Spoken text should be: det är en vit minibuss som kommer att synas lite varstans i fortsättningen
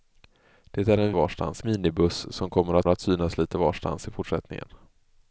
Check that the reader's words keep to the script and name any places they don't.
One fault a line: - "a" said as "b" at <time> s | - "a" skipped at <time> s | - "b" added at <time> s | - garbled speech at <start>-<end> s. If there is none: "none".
- "vit" said as "varstans" at 1.1 s
- "att" added at 2.9 s